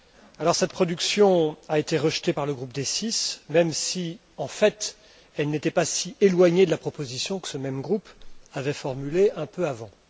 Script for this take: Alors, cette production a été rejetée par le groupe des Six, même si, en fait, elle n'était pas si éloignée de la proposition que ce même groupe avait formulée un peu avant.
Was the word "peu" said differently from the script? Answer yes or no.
no